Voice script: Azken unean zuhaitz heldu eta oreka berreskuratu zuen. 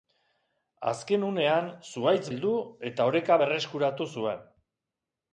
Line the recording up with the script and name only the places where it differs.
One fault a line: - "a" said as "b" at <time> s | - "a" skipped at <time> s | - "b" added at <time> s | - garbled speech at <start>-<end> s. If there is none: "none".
none